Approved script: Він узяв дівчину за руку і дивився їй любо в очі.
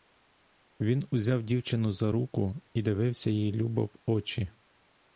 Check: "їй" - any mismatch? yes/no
no